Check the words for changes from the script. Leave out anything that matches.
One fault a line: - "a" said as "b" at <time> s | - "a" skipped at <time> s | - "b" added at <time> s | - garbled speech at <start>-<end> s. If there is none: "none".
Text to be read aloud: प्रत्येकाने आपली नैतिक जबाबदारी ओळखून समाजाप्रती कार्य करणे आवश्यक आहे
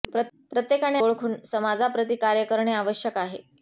- "आपली नैतिक जबाबदारी" skipped at 1.0 s